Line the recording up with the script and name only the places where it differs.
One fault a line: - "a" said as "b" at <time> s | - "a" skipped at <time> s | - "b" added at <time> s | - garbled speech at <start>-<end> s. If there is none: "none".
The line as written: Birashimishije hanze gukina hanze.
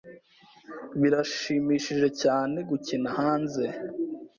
- "hanze" said as "cyane" at 2.2 s